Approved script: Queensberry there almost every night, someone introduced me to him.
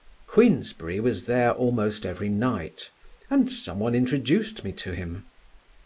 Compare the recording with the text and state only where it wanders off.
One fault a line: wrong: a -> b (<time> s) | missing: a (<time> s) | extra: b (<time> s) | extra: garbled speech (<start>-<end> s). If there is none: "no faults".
extra: was (1.0 s)
extra: and (3.3 s)